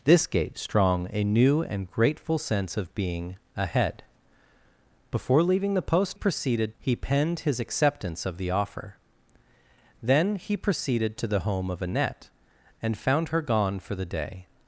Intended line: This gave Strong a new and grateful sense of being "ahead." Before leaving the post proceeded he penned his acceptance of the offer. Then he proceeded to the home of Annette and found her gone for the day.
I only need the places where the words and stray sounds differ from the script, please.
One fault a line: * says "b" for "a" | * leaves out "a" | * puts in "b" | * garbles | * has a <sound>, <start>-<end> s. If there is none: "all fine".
all fine